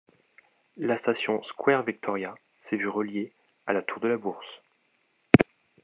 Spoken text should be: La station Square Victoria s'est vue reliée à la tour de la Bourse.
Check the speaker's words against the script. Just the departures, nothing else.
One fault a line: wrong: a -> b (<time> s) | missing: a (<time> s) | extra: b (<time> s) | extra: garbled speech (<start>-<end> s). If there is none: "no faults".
no faults